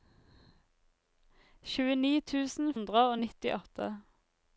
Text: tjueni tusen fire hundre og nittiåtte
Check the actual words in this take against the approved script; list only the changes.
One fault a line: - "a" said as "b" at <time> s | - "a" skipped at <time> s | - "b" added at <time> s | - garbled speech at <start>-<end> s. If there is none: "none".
- "fire" skipped at 2.7 s